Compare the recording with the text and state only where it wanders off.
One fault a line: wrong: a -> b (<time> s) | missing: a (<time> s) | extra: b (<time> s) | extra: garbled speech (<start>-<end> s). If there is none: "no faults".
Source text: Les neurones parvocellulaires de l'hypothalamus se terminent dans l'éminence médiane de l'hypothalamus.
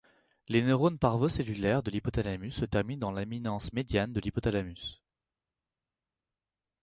no faults